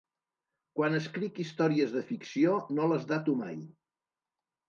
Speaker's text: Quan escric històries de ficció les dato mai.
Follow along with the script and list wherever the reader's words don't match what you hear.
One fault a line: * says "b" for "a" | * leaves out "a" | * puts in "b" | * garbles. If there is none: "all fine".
* puts in "no"